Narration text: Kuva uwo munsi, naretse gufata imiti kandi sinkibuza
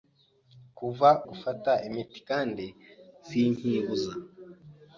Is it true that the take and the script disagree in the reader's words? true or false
true